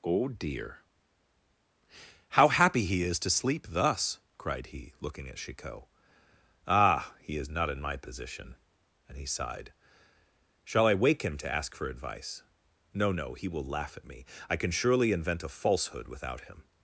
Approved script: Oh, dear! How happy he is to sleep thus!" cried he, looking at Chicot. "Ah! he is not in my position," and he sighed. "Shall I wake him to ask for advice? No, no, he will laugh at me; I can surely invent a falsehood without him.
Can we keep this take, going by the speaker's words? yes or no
yes